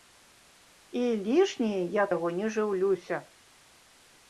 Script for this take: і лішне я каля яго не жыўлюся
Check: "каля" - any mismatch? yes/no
yes